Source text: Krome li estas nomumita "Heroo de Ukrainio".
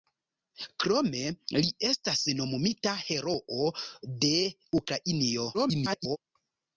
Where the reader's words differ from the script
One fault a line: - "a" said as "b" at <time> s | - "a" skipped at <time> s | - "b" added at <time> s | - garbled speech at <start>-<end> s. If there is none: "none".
- garbled speech at 5.5-6.2 s